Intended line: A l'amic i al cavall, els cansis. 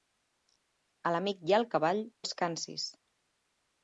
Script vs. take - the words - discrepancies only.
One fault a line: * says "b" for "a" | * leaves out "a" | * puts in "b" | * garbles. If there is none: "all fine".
all fine